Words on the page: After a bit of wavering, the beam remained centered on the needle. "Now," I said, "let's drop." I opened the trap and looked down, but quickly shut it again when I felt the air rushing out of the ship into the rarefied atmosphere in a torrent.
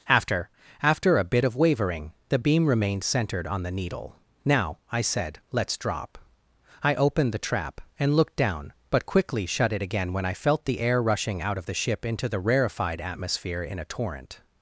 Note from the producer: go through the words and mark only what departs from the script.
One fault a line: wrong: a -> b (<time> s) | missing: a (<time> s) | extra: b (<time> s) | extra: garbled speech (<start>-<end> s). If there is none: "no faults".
extra: after (0.8 s)